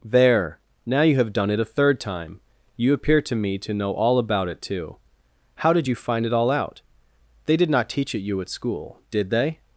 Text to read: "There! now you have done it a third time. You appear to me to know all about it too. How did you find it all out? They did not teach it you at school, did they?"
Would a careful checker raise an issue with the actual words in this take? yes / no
no